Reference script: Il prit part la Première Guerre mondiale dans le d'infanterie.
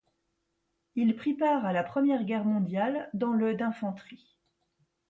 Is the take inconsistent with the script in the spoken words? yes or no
yes